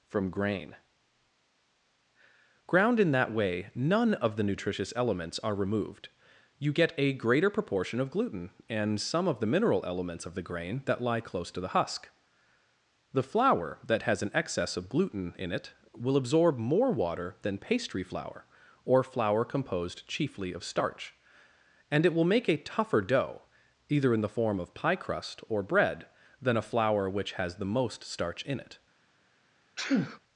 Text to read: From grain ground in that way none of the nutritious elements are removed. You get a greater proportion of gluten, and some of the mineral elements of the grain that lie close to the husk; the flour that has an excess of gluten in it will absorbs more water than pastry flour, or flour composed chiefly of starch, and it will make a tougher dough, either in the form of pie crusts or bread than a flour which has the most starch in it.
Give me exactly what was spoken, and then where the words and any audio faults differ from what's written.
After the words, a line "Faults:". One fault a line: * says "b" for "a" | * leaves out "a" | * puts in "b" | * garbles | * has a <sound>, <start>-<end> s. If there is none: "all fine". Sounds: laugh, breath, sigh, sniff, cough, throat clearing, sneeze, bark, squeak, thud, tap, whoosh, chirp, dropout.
From grain ground in that way none of the nutritious elements are removed. You get a greater proportion of gluten, and some of the mineral elements of the grain that lie close to the husk; the flour that has an excess of gluten in it will absorb more water than pastry flour, or flour composed chiefly of starch, and it will make a tougher dough, either in the form of pie crust or bread than a flour which has the most starch in it.
Faults:
* says "absorb" for "absorbs"
* says "crust" for "crusts"
* has a sneeze, 29.8-30.2 s